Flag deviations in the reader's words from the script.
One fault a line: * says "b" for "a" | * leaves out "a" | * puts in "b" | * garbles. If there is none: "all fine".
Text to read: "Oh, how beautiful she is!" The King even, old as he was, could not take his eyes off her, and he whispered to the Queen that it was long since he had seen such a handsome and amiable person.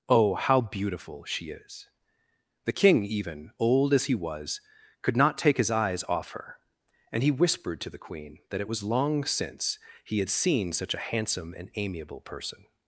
all fine